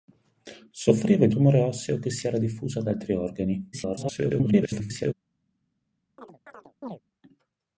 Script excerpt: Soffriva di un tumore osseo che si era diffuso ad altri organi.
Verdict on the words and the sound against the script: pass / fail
fail